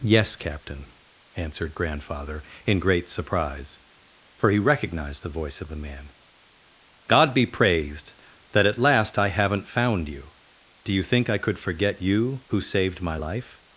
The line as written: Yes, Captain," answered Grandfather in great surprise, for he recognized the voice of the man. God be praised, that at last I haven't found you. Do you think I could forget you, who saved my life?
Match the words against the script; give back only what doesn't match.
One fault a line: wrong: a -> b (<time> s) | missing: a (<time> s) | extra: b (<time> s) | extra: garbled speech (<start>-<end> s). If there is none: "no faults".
no faults